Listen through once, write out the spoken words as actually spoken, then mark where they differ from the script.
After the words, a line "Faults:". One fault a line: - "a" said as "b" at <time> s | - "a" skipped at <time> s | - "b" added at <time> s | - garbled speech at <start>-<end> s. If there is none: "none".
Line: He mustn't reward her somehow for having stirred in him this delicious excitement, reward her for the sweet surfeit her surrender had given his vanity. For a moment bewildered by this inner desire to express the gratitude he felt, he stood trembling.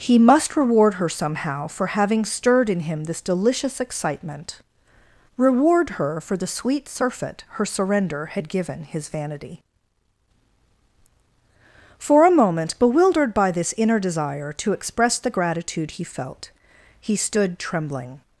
He must reward her somehow for having stirred in him this delicious excitement, reward her for the sweet surfeit her surrender had given his vanity. For a moment bewildered by this inner desire to express the gratitude he felt, he stood trembling.
Faults:
- "mustn't" said as "must" at 0.2 s